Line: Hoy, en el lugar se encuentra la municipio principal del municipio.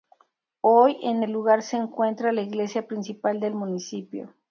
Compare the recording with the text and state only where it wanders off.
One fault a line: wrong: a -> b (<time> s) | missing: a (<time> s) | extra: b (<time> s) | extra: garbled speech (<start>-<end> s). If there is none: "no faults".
wrong: municipio -> iglesia (2.4 s)